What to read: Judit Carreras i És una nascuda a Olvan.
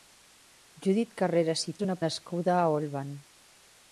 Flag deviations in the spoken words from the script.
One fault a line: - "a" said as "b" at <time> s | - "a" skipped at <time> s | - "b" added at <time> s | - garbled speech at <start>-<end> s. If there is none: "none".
none